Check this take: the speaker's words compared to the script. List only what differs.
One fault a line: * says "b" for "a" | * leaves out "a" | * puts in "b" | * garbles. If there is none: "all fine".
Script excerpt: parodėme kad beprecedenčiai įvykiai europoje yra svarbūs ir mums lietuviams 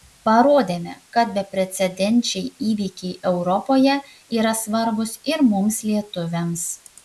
all fine